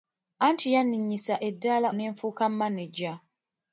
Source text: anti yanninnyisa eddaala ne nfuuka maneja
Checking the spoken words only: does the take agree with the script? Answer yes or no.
yes